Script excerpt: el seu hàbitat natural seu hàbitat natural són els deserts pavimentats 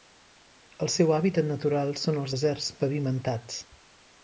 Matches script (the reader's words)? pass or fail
fail